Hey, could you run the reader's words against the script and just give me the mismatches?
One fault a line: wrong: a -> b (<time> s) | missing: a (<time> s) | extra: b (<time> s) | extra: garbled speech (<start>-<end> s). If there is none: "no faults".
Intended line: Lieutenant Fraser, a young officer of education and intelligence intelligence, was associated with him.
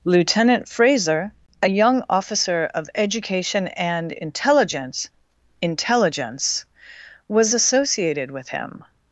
no faults